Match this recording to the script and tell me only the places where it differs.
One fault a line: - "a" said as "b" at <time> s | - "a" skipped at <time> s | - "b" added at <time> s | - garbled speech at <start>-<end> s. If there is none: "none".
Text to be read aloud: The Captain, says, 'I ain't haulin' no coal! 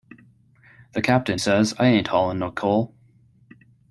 none